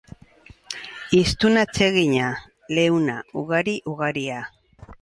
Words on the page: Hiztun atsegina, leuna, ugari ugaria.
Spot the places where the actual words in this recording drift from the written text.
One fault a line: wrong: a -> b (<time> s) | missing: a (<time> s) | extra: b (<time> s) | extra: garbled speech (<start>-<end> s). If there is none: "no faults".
no faults